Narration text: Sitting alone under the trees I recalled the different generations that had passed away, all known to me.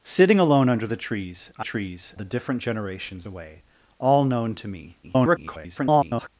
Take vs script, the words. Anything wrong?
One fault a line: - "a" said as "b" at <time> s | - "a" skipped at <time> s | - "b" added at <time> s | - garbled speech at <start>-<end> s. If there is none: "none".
- "recalled" said as "trees" at 1.6 s
- "that had passed" skipped at 3.3 s
- garbled speech at 5.0-6.3 s